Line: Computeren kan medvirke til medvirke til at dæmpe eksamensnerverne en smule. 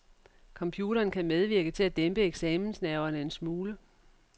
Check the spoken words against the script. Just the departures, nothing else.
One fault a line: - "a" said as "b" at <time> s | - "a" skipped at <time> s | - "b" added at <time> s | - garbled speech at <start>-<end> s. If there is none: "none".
- "medvirke til" skipped at 1.8 s